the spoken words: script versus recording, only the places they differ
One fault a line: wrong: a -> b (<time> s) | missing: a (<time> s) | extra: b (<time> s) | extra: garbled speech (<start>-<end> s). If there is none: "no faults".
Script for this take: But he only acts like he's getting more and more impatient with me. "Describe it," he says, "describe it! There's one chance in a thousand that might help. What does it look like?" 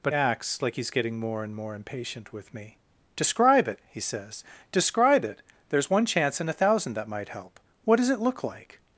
missing: he only (0.1 s)